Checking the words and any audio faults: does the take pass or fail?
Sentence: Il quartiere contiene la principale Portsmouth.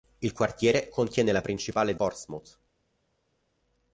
pass